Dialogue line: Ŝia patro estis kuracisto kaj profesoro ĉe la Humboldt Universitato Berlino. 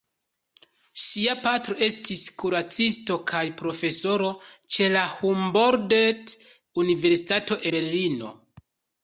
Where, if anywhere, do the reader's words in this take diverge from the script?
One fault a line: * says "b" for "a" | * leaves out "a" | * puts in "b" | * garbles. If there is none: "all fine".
all fine